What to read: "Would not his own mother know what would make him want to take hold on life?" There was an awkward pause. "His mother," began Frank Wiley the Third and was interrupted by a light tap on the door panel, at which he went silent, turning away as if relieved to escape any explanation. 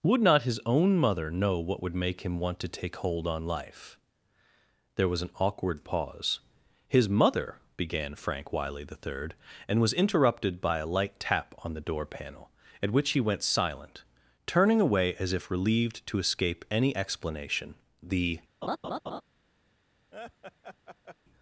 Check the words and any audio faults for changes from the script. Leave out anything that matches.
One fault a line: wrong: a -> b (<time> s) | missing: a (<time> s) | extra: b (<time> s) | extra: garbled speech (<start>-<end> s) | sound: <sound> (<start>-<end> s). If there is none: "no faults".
extra: The (18.0 s)
sound: laugh (18.6-19.2 s)
sound: laugh (20.1-21.2 s)